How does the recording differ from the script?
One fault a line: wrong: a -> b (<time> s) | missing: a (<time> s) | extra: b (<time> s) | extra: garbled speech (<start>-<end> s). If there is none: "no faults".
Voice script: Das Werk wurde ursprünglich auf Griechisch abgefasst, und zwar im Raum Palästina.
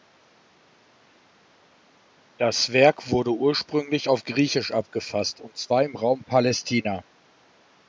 no faults